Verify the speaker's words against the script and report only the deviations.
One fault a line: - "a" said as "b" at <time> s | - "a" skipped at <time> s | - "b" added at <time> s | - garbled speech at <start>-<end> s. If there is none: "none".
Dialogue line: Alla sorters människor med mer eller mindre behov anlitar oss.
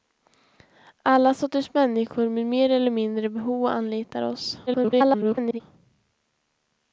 - garbled speech at 4.7-5.6 s